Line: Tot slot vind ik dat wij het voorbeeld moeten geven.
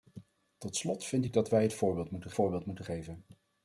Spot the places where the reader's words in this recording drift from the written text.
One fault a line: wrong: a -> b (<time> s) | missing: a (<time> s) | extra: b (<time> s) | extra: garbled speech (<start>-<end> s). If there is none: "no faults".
extra: voorbeeld moeten (2.3 s)